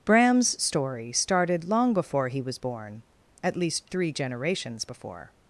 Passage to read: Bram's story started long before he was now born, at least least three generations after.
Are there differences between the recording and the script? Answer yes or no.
yes